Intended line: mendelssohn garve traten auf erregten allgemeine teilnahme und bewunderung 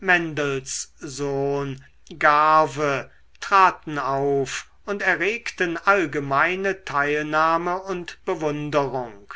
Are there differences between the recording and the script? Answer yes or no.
yes